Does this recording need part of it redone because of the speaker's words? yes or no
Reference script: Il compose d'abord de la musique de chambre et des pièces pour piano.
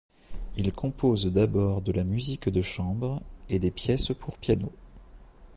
no